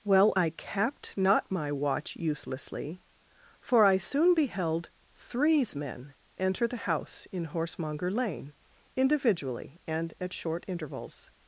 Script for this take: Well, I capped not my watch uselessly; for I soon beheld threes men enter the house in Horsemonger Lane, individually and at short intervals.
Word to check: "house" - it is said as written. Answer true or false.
true